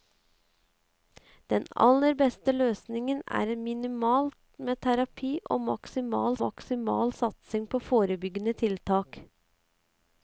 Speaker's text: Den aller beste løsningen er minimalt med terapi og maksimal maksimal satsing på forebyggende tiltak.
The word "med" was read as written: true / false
true